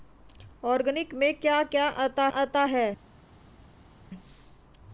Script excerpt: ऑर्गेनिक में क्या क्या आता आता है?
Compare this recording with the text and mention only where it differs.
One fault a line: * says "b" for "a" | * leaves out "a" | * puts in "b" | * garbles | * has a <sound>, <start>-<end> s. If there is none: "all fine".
all fine